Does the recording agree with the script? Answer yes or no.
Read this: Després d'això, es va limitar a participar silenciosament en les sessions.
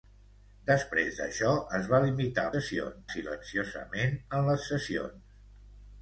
no